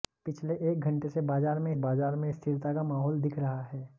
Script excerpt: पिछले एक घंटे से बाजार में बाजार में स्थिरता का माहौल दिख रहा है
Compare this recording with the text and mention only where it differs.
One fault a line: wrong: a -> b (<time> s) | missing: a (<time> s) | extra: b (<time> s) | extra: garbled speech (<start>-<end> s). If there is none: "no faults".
no faults